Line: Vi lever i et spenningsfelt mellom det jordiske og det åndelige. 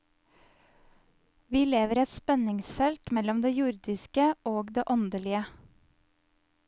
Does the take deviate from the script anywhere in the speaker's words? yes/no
no